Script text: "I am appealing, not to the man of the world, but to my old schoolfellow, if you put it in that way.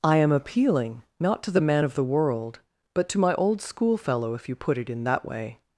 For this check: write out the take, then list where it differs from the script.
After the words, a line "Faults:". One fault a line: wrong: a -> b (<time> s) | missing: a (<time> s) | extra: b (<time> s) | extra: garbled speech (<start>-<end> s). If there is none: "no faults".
"I am appealing, not to the man of the world, but to my old schoolfellow, if you put it in that way.
Faults:
no faults